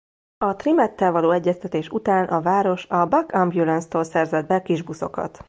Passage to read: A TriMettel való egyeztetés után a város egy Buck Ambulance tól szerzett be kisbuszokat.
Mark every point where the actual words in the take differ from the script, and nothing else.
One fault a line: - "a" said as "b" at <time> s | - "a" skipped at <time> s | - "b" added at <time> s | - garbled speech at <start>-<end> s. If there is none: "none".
- "egy" said as "a" at 2.9 s